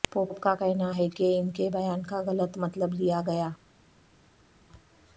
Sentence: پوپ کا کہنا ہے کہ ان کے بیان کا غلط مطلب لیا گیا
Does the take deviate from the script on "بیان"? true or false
false